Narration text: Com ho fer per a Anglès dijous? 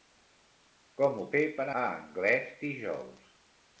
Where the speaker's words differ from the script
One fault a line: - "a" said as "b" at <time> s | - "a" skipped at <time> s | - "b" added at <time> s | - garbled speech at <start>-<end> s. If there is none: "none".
none